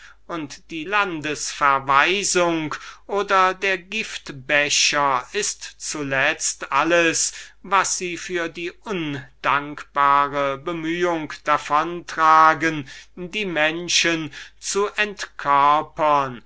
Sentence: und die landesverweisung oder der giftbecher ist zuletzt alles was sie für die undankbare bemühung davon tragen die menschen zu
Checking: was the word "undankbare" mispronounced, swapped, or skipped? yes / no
no